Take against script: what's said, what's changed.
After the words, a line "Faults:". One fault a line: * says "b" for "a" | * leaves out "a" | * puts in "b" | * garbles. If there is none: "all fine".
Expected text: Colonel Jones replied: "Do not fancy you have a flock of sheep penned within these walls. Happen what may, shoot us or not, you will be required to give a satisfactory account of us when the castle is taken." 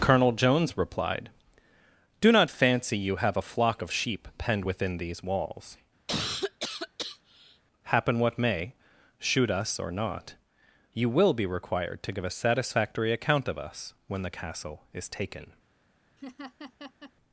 Colonel Jones replied: "Do not fancy you have a flock of sheep penned within these walls. Happen what may, shoot us or not, you will be required to give a satisfactory account of us when the castle is taken."
Faults:
all fine